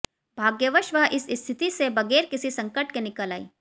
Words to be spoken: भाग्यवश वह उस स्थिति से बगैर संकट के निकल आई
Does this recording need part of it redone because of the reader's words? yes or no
yes